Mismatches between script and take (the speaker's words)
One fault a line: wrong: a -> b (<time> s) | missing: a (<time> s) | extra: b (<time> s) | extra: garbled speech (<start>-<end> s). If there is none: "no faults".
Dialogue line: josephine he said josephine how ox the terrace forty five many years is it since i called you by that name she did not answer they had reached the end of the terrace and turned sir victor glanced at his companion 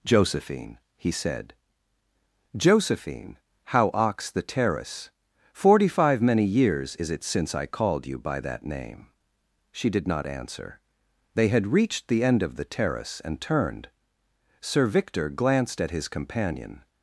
no faults